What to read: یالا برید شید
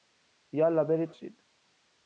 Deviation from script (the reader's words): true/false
false